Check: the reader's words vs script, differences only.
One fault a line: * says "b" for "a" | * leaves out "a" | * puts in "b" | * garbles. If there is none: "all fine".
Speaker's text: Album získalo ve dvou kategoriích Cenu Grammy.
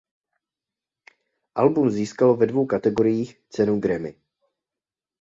all fine